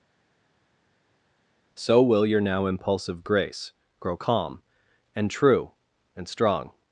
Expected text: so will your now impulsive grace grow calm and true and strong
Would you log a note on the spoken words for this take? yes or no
no